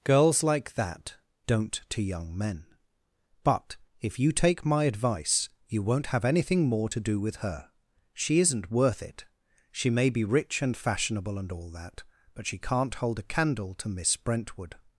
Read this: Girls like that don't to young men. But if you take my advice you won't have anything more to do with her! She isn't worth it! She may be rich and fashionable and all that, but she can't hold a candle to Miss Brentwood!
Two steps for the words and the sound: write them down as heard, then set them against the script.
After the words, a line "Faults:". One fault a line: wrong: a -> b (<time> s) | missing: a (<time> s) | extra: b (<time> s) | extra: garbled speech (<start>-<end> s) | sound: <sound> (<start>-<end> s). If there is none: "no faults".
Girls like that don't to young men. But if you take my advice you won't have anything more to do with her! She isn't worth it! She may be rich and fashionable and all that, but she can't hold a candle to Miss Brentwood!
Faults:
no faults